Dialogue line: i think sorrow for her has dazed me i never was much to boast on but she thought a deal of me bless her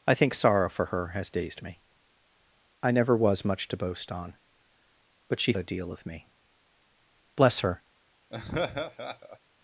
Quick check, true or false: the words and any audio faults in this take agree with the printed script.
false